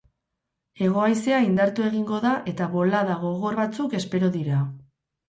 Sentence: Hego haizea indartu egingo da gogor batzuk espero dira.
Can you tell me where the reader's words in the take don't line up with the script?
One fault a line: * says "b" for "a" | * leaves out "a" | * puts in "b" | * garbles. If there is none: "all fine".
* puts in "eta bolada"